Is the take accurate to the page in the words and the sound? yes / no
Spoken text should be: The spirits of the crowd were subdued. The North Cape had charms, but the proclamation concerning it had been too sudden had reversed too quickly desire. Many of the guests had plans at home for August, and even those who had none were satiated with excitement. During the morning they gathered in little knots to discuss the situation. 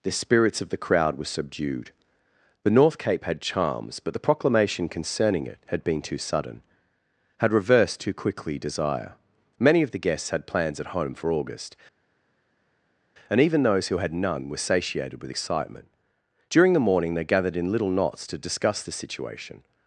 yes